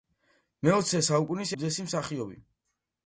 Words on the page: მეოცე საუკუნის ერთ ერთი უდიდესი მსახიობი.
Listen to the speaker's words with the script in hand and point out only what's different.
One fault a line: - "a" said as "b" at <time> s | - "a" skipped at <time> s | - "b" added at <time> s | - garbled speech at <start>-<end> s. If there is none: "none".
- "ერთ ერთი" skipped at 1.5 s